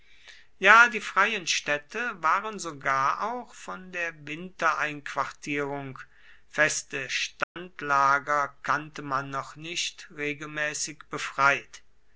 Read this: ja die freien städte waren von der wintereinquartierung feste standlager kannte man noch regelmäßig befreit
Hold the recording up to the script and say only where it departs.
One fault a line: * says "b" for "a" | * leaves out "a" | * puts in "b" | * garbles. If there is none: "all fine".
* puts in "sogar auch"
* puts in "nicht"